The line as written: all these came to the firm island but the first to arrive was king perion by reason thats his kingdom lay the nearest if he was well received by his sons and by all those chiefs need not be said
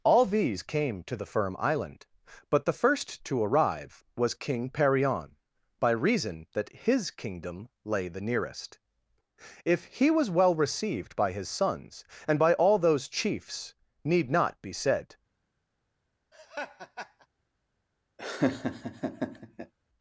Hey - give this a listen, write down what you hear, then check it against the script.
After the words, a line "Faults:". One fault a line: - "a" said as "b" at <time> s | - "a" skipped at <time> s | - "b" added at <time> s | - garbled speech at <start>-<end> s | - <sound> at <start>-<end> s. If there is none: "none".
all these came to the firm island but the first to arrive was king perion by reason that his kingdom lay the nearest if he was well received by his sons and by all those chiefs need not be said
Faults:
- "thats" said as "that" at 6.5 s
- laugh at 16.3-17.3 s
- laugh at 18.2-19.7 s